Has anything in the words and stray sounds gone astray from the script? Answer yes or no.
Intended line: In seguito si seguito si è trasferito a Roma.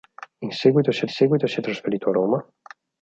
no